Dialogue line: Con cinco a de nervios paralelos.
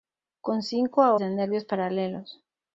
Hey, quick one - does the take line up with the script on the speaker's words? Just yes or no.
yes